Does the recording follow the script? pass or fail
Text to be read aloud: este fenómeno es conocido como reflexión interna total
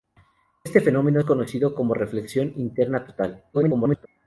fail